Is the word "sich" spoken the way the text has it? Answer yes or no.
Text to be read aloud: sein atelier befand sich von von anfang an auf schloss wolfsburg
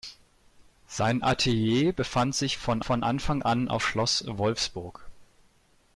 yes